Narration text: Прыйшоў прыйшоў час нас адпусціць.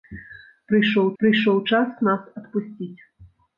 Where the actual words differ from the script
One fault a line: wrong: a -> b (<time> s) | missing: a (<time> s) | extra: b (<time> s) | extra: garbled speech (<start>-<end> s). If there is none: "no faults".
no faults